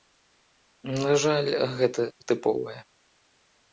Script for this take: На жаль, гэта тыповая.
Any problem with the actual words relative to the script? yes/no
no